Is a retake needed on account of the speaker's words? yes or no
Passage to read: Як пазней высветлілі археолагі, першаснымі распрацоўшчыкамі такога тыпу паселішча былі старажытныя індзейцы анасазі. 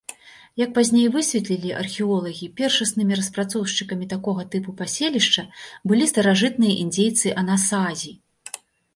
no